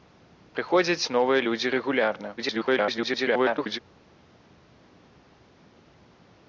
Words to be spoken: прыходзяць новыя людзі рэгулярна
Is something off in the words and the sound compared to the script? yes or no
yes